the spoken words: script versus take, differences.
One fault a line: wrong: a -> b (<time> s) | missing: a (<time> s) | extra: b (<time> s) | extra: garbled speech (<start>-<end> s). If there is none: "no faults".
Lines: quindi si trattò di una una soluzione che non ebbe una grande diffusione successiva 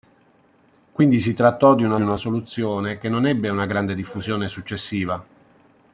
no faults